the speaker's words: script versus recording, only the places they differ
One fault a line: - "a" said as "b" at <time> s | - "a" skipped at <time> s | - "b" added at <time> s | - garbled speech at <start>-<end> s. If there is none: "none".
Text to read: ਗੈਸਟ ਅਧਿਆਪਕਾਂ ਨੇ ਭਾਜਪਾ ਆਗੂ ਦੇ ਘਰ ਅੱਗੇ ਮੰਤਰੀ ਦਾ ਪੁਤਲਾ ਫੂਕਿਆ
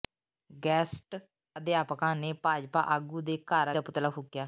- "ਅੱਗੇ ਮੰਤਰੀ" skipped at 3.7 s